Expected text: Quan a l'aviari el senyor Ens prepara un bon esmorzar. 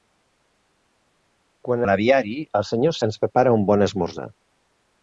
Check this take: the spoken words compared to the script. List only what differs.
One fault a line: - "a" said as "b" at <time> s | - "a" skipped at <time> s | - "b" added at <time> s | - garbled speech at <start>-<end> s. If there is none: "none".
none